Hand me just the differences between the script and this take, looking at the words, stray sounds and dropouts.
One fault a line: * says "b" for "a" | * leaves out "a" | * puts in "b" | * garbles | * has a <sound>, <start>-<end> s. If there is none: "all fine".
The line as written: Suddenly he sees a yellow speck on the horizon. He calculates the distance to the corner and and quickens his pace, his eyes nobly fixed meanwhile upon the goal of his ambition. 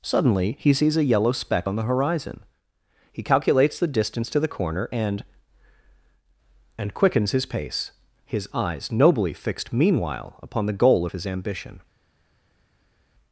all fine